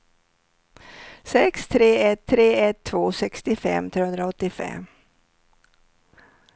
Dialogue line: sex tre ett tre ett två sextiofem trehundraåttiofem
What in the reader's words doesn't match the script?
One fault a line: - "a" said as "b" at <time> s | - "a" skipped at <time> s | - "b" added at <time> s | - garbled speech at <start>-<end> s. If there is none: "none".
none